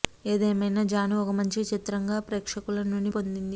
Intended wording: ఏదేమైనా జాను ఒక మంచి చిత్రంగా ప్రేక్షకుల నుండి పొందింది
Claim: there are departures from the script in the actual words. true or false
false